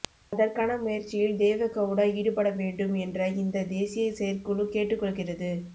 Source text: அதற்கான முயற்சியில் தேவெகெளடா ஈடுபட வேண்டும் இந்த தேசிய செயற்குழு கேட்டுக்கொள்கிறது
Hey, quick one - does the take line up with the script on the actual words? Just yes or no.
no